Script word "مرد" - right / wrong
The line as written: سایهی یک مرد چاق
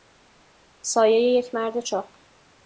right